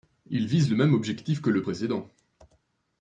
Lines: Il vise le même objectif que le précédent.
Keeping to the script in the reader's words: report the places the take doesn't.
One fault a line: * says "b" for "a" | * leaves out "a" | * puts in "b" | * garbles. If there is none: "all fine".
all fine